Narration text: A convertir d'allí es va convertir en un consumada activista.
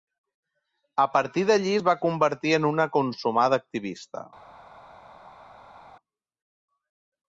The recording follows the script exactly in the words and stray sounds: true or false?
false